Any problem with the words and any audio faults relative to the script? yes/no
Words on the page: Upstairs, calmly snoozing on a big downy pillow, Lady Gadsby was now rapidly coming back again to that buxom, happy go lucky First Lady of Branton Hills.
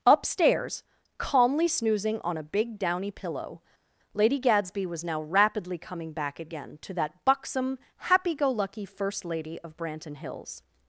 no